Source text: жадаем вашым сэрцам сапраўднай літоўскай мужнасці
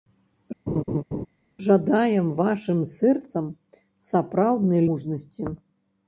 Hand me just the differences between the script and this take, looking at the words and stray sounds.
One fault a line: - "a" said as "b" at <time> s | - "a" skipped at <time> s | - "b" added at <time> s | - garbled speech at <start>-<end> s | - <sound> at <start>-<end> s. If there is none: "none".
- laugh at 0.7-1.3 s
- "літоўскай" skipped at 4.8 s